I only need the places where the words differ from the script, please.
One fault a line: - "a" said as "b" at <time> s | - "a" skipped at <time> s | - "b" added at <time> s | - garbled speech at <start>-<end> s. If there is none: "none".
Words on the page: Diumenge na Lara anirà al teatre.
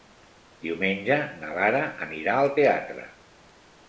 none